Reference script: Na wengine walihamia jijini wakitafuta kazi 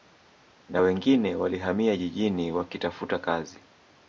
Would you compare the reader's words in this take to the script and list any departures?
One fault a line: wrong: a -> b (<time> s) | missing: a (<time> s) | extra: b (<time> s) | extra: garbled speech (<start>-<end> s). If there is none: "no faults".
no faults